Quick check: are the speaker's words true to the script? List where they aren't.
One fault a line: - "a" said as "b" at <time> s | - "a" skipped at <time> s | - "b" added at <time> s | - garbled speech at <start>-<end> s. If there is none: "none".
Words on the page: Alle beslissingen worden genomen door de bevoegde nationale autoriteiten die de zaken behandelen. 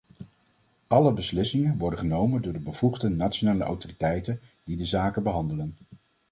none